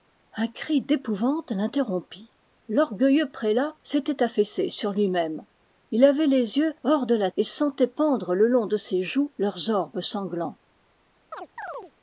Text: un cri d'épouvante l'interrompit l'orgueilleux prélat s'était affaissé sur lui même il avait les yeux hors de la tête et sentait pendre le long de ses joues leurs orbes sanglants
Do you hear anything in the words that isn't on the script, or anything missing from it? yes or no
yes